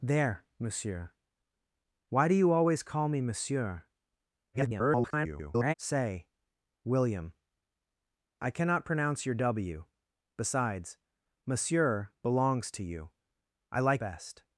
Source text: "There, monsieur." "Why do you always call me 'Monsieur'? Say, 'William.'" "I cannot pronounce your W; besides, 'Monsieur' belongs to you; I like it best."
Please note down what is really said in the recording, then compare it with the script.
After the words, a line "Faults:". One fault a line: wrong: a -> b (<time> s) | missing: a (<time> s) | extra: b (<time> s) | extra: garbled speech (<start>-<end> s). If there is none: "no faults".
"There, monsieur." "Why do you always call me 'Monsieur'? [garbled] Say, 'William.'" "I cannot pronounce your W; besides, 'Monsieur' belongs to you; I like best."
Faults:
extra: garbled speech (4.5-5.7 s)
missing: it (14.0 s)